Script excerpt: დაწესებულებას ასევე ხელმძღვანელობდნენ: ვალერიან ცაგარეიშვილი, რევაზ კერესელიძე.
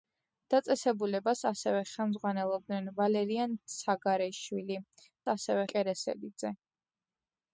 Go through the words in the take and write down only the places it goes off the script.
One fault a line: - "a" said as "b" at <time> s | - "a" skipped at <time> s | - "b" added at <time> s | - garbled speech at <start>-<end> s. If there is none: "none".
- "რევაზ" said as "ასევე" at 5.3 s